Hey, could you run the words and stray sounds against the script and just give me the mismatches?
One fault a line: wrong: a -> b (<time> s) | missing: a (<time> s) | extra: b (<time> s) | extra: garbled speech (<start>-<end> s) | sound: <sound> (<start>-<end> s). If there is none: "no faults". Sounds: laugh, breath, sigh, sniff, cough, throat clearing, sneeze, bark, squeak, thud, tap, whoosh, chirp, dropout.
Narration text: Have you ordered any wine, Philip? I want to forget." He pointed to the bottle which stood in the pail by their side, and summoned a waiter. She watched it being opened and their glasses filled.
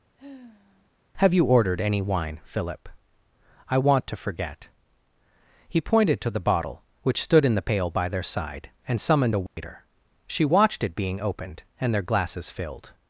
sound: sigh (0.2-0.9 s)
sound: dropout (9.5-9.6 s)